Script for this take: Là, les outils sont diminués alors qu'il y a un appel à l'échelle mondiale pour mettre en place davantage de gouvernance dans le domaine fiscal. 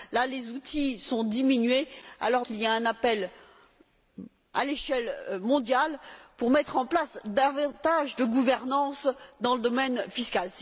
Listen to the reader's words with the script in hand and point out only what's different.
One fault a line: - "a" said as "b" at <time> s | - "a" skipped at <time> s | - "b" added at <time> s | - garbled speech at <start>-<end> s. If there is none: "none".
none